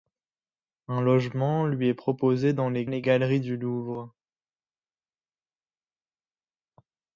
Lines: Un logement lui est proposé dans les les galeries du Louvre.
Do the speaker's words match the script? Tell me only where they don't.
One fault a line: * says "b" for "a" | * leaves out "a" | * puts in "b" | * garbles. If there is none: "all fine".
all fine